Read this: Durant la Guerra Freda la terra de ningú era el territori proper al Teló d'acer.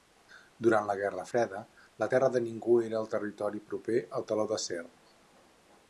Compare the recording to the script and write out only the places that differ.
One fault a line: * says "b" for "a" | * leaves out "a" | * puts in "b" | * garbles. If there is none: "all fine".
all fine